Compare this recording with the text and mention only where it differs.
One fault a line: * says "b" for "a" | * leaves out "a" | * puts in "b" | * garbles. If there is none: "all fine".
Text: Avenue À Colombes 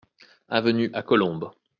all fine